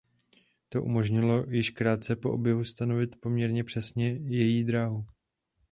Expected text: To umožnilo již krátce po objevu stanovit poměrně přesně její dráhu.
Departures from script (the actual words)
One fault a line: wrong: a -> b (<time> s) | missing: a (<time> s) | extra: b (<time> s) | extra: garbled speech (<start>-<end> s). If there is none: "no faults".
no faults